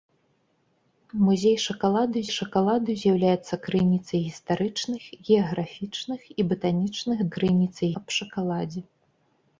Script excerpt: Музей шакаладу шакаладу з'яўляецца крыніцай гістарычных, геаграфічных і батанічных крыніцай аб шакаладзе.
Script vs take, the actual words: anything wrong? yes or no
no